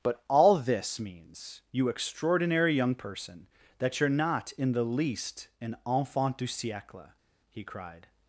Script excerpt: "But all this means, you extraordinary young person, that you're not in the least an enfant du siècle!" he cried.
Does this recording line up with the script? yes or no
yes